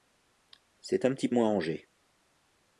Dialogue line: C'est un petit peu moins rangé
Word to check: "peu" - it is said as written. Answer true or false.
false